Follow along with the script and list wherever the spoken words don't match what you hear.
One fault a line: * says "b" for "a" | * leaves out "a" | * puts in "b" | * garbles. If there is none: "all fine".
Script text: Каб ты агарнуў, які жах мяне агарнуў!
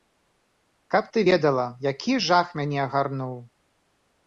* says "ведала" for "агарнуў"